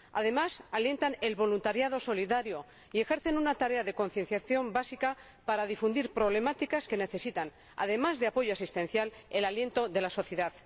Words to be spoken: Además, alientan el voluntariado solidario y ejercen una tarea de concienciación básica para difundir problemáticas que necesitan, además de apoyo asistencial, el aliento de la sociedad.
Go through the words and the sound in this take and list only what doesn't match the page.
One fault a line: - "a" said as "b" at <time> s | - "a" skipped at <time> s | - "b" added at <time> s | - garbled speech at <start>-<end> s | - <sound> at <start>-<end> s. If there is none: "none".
none